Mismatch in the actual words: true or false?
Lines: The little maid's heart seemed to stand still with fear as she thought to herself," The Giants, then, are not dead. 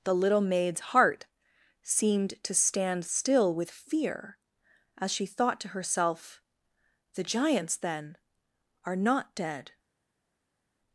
false